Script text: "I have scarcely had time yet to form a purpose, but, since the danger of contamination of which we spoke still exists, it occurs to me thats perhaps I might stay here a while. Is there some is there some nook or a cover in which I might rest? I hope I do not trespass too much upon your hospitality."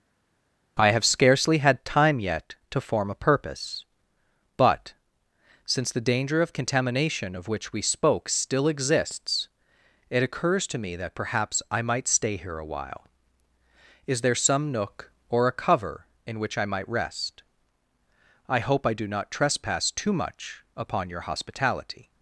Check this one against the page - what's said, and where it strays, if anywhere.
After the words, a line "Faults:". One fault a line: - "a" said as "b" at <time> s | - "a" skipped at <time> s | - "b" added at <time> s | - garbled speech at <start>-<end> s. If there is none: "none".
"I have scarcely had time yet to form a purpose, but, since the danger of contamination of which we spoke still exists, it occurs to me that perhaps I might stay here a while. Is there some nook or a cover in which I might rest? I hope I do not trespass too much upon your hospitality."
Faults:
- "thats" said as "that" at 10.9 s
- "is there some" skipped at 14.7 s